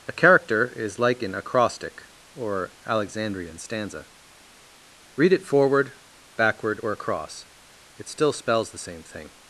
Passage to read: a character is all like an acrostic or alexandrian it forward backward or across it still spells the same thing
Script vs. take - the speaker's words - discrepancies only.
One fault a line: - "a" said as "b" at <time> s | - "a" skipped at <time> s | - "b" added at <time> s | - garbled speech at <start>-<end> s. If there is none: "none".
- "all" skipped at 1.0 s
- "stanza read" added at 3.6 s